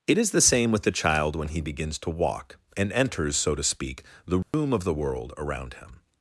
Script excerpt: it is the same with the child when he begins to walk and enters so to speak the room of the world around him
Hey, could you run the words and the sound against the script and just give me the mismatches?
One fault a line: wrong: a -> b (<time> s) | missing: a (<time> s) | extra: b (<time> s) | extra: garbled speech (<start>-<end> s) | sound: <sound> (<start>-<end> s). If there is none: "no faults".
sound: dropout (4.4-4.5 s)